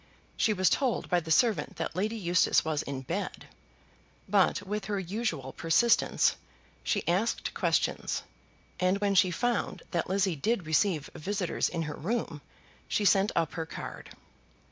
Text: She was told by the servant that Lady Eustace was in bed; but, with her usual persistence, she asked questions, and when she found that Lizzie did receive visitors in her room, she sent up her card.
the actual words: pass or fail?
pass